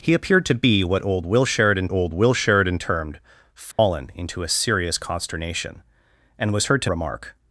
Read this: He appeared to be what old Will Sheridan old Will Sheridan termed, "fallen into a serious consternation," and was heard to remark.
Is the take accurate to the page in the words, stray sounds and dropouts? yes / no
no